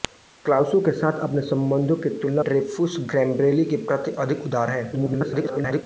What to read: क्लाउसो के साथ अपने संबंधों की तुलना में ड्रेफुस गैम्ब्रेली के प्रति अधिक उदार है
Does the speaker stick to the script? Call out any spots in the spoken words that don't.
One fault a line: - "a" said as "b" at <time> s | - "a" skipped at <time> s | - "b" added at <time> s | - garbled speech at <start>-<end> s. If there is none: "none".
- "में" skipped at 2.4 s
- garbled speech at 4.9-5.8 s